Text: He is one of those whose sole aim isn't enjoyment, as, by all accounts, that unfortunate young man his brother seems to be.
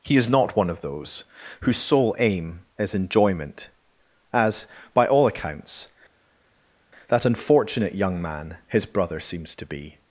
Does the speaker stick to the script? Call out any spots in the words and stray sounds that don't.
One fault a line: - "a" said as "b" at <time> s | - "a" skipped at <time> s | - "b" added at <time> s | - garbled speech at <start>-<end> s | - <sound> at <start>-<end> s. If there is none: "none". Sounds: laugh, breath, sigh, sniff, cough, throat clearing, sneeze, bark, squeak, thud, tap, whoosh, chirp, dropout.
- "not" added at 0.3 s
- "isn't" said as "is" at 2.8 s